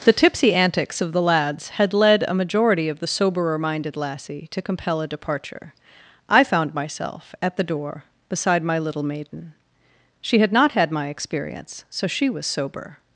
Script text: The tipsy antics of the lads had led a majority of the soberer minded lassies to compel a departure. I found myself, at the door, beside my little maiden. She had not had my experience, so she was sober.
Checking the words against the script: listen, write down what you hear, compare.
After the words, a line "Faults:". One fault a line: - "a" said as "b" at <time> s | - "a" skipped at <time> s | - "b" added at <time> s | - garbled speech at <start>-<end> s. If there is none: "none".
The tipsy antics of the lads had led a majority of the soberer minded lassie to compel a departure. I found myself, at the door, beside my little maiden. She had not had my experience, so she was sober.
Faults:
- "lassies" said as "lassie" at 4.0 s